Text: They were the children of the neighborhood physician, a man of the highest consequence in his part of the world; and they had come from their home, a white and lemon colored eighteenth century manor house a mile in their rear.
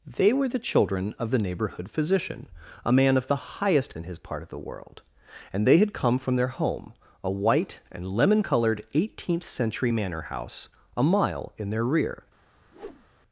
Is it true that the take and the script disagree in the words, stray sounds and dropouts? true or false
true